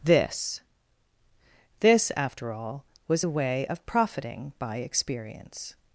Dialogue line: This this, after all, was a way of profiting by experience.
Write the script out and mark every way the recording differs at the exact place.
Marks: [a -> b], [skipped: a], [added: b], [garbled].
This this, after all, was a way of profiting by experience.